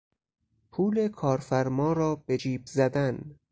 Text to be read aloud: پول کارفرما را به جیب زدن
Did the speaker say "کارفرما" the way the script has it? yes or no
yes